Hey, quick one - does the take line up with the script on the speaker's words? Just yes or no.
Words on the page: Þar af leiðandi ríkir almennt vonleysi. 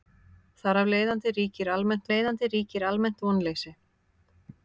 no